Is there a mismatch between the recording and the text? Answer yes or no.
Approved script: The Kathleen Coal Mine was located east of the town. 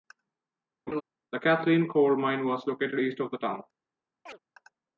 no